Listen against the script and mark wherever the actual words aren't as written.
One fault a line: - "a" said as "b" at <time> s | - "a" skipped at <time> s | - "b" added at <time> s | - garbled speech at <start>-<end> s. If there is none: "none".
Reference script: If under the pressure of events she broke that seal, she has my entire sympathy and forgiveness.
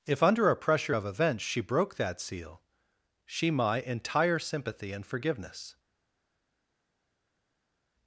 - "the" said as "a" at 0.5 s
- "has" skipped at 3.5 s